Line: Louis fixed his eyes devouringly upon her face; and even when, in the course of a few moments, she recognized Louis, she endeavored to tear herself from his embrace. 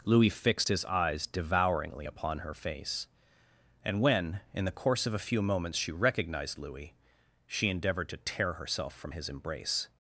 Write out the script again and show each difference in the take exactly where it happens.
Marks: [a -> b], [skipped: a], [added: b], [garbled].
Louis fixed his eyes devouringly upon her face; and [skipped: even] when, in the course of a few moments, she recognized Louis, she endeavored to tear herself from his embrace.